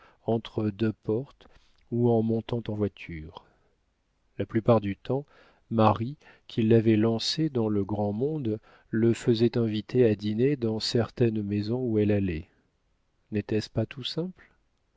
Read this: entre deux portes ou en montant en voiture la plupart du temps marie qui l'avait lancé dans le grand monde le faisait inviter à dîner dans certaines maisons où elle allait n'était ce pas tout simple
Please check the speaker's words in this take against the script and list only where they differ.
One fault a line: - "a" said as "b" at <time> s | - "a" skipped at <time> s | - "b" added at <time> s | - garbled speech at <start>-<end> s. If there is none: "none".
none